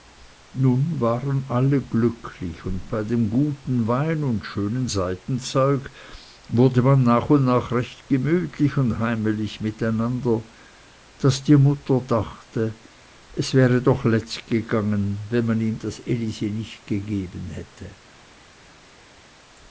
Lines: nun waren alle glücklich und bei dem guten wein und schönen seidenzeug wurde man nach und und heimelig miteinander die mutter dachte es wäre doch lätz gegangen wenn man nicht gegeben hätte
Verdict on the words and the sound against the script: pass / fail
fail